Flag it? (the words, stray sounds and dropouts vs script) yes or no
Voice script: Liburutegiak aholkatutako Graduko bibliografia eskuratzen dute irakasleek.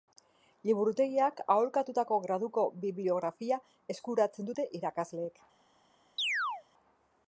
yes